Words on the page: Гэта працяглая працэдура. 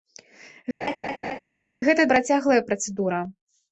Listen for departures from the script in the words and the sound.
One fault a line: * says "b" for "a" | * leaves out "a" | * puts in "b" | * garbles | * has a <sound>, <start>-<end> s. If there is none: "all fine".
* has a laugh, 0.8-1.4 s